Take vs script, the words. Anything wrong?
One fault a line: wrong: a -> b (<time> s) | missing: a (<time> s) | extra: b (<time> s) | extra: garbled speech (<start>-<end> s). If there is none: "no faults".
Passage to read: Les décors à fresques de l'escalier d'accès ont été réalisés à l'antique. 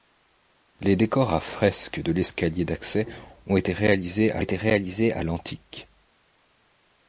extra: été réalisés à (4.4 s)